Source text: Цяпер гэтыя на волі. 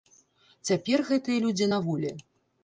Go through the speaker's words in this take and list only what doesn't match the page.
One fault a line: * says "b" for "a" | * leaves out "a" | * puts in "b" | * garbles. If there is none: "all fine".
* puts in "людзі"